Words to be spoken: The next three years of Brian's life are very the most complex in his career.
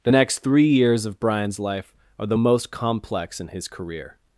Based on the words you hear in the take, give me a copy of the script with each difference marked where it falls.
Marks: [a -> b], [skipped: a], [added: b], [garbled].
The next three years of Brian's life are [skipped: very] the most complex in his career.